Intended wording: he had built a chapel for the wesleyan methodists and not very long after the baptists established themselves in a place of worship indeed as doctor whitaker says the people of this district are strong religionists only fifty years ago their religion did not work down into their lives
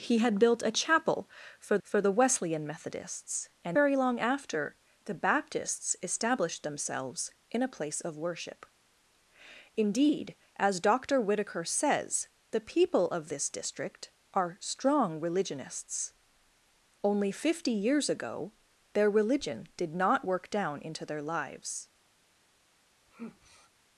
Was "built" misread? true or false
false